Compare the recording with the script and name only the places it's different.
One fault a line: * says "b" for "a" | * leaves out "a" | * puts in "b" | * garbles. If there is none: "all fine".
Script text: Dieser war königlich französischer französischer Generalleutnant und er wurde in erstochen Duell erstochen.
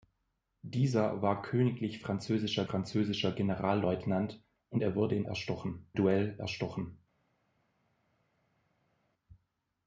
all fine